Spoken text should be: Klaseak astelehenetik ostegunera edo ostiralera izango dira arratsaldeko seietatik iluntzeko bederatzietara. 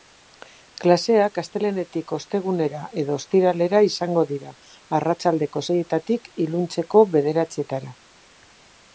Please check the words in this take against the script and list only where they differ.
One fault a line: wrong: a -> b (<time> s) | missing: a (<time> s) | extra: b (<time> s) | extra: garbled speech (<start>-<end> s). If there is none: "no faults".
no faults